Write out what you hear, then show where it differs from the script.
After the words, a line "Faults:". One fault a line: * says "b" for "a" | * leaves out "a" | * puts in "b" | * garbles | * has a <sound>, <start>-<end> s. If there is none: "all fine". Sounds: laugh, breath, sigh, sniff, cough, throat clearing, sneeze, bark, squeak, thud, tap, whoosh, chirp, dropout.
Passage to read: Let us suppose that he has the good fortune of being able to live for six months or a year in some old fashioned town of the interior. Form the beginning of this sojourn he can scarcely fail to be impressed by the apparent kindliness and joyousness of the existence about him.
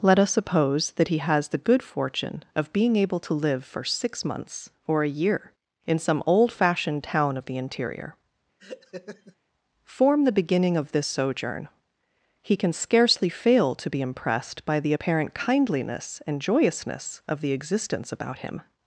Let us suppose that he has the good fortune of being able to live for six months or a year in some old fashioned town of the interior. Form the beginning of this sojourn he can scarcely fail to be impressed by the apparent kindliness and joyousness of the existence about him.
Faults:
* has a laugh, 8.6-9.4 s